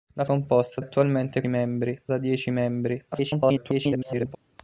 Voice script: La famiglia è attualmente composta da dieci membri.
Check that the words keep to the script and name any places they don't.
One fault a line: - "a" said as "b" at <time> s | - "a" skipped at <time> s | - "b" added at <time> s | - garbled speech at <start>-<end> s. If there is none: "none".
- "famiglia" said as "composta" at 0.2 s
- "composta" said as "membri" at 1.5 s
- garbled speech at 3.1-4.4 s